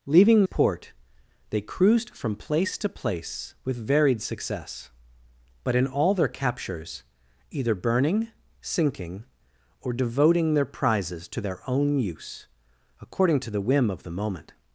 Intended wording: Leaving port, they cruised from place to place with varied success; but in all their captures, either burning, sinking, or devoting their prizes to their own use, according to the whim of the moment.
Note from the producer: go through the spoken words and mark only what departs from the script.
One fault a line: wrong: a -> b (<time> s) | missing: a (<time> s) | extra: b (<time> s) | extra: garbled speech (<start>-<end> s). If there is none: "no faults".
no faults